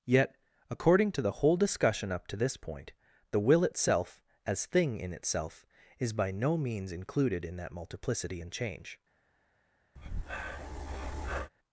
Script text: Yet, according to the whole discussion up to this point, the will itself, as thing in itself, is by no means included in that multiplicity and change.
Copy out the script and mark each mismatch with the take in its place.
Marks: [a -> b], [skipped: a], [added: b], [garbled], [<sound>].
Yet, according to the whole discussion up to this point, the will itself, as thing in itself, is by no means included in that multiplicity and change. [breath]